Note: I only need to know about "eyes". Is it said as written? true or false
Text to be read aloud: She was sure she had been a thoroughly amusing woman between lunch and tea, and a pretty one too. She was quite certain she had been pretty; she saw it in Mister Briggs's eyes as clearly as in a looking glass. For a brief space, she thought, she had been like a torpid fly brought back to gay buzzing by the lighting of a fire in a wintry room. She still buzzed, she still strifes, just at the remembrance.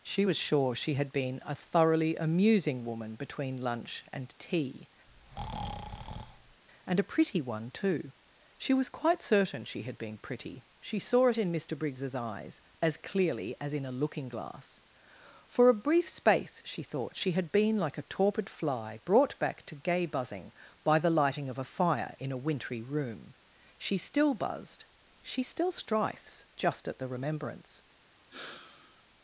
true